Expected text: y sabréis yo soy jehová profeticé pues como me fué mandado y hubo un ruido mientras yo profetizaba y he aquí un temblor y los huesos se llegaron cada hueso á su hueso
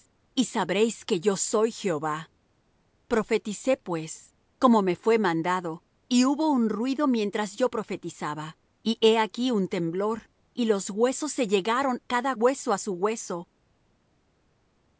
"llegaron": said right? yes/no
yes